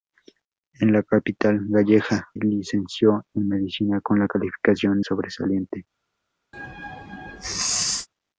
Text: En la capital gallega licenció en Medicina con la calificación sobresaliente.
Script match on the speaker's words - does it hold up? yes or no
yes